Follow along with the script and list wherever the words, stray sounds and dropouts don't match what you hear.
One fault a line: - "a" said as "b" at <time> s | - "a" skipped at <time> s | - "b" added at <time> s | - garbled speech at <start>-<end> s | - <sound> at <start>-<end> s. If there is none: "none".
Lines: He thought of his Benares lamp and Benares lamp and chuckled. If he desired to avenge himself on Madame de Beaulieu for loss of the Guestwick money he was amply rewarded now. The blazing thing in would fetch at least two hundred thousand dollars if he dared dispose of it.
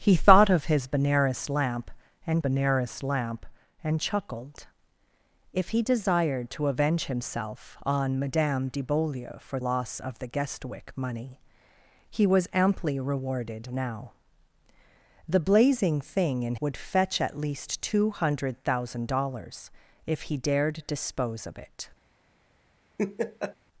- laugh at 23.0-23.6 s